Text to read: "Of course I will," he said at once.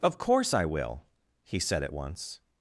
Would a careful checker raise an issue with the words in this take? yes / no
no